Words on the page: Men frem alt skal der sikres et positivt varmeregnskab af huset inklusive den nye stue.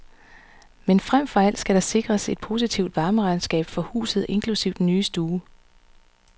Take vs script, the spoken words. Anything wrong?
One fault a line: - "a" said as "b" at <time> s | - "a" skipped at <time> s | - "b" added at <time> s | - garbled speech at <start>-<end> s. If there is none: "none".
- "for" added at 1.3 s
- "af" said as "for" at 3.6 s